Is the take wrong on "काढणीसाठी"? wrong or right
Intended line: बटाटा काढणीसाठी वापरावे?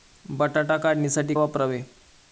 right